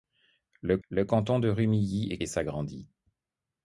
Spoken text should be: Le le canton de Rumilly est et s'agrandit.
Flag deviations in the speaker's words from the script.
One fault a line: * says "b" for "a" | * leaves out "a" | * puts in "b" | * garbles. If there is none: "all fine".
all fine